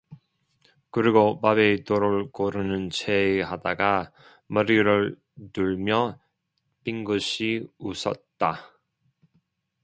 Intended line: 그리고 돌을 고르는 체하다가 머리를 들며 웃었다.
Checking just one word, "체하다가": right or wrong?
right